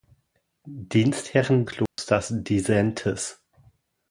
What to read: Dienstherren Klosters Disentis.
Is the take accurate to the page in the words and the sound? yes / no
no